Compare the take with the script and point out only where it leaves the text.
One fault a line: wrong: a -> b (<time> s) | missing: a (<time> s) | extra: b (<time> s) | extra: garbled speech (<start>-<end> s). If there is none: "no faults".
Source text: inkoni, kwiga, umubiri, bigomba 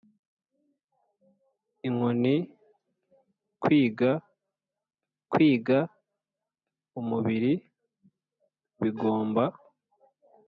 extra: kwiga (5.3 s)